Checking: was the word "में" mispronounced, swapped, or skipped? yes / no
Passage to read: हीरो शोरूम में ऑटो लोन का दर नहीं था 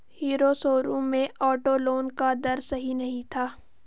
no